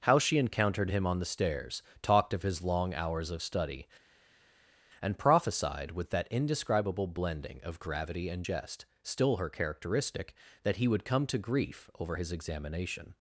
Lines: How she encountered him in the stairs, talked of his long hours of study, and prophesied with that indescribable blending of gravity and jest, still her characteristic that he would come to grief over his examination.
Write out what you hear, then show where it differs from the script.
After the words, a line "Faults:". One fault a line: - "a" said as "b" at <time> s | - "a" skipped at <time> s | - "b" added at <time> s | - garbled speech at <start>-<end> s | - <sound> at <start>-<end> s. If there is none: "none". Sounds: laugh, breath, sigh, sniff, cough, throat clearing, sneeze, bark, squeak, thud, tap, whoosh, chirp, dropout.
How she encountered him on the stairs, talked of his long hours of study, and prophesied with that indescribable blending of gravity and jest, still her characteristic that he would come to grief over his examination.
Faults:
- "in" said as "on" at 1.1 s